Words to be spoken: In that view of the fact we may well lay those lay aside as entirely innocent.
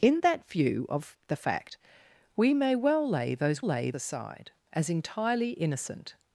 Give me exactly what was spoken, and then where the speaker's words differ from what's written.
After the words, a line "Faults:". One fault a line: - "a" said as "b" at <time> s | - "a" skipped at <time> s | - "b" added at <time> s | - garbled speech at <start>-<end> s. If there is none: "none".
In that view of the fact we may well lay those lay aside as entirely innocent.
Faults:
none